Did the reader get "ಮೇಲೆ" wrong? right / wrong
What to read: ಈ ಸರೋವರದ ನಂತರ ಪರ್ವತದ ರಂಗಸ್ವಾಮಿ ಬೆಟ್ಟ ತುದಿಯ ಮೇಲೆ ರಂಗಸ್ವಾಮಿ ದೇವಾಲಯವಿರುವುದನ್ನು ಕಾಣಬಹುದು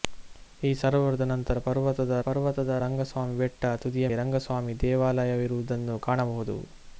wrong